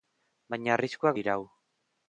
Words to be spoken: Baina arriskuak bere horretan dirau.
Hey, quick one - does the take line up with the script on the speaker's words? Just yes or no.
no